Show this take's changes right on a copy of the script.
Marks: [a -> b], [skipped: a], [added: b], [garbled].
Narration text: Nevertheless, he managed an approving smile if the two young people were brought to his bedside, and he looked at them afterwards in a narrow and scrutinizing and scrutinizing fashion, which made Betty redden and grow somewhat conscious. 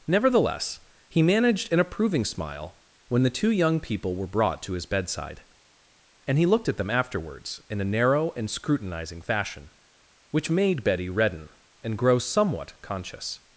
Nevertheless, he managed an approving smile [if -> when] the two young people were brought to his bedside, and he looked at them afterwards in a narrow and scrutinizing [skipped: and scrutinizing] fashion, which made Betty redden and grow somewhat conscious.